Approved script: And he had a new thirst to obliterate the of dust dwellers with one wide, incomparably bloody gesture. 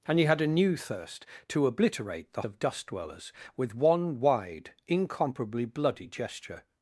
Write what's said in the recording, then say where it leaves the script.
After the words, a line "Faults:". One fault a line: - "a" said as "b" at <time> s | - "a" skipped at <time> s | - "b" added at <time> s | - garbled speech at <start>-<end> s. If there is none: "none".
And he had a new thirst to obliterate the of dust dwellers with one wide, incomparably bloody gesture.
Faults:
none